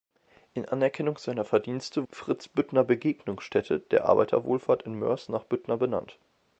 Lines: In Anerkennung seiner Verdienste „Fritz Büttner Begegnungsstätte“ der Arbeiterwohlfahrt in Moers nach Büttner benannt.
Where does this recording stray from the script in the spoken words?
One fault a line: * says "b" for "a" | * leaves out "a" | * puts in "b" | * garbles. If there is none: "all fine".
all fine